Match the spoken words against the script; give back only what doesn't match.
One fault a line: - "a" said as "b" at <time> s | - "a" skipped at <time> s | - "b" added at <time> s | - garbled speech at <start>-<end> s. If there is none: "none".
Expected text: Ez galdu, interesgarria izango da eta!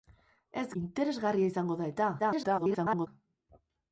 - "galdu" skipped at 0.6 s
- garbled speech at 2.2-3.1 s